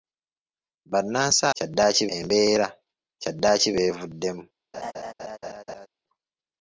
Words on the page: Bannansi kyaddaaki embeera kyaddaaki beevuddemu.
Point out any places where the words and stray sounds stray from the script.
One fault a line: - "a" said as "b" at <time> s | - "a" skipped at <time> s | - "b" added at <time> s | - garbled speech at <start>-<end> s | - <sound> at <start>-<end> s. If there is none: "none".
- laugh at 4.7-5.9 s